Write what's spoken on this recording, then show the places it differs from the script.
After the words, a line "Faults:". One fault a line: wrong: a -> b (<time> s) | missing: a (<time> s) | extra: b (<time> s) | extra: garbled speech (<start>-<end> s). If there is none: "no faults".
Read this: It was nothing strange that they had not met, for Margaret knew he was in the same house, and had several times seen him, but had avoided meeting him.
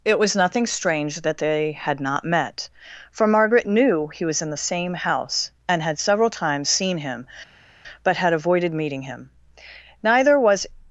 It was nothing strange that they had not met, for Margaret knew he was in the same house, and had several times seen him, but had avoided meeting him. Neither was
Faults:
extra: Neither was (10.0 s)